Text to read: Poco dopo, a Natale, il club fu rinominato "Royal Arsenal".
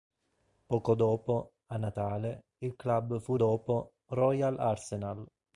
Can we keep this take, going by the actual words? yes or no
no